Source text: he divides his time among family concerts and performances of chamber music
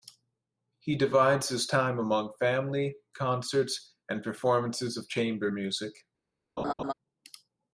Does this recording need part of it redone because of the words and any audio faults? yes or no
yes